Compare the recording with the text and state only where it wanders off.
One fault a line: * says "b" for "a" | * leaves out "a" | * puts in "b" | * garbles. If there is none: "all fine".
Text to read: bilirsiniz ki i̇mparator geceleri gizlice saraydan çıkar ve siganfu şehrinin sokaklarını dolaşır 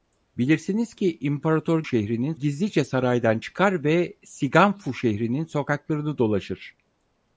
* says "şehrinin" for "geceleri"